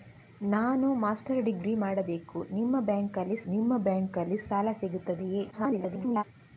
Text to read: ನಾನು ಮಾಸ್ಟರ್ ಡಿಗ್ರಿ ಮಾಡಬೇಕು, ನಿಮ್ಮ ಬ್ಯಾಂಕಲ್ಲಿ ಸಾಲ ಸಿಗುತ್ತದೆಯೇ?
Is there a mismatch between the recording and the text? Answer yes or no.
yes